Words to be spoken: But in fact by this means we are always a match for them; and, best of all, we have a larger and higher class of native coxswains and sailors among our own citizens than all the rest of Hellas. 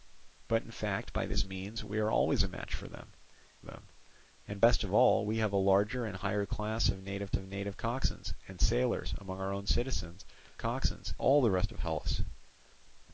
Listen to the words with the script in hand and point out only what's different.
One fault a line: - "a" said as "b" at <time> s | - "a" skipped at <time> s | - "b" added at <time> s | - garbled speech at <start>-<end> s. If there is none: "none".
- "them" added at 3.6 s
- "of native" added at 7.3 s
- "than" said as "coxswains" at 10.6 s